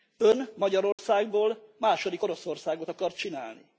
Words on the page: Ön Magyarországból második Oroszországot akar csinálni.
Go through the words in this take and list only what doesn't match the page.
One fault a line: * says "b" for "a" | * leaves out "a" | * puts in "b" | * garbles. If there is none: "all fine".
all fine